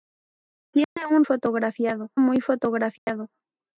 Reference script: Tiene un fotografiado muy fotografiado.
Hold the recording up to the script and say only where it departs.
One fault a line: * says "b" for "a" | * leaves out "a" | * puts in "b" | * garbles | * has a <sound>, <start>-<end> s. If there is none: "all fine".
* has a dropout, 0.8-1.0 s
* has a dropout, 3.0-3.1 s